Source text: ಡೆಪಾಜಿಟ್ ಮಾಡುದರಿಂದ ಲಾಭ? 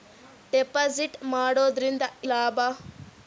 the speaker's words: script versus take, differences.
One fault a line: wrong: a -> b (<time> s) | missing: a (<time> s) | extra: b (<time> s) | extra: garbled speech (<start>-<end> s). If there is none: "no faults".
no faults